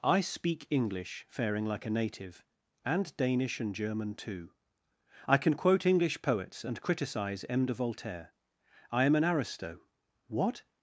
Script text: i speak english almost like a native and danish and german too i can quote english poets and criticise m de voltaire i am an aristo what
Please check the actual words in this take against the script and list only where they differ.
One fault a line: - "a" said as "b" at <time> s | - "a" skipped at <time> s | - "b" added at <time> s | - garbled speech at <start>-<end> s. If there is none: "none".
- "almost" said as "faring" at 1.3 s